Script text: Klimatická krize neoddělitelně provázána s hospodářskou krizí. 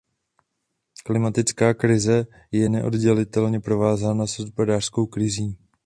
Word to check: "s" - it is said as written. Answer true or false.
true